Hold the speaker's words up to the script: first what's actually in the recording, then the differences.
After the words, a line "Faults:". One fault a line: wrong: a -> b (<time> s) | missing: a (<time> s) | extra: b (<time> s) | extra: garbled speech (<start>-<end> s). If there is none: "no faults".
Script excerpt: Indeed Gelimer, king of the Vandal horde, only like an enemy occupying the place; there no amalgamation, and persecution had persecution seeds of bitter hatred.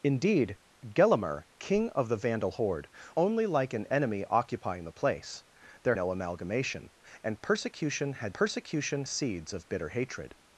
Indeed Gelimer, king of the Vandal horde, only like an enemy occupying the place; there no amalgamation, and persecution had persecution seeds of bitter hatred.
Faults:
no faults